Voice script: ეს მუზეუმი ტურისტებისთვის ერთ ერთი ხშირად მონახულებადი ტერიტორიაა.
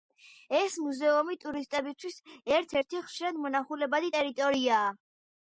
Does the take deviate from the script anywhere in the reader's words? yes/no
no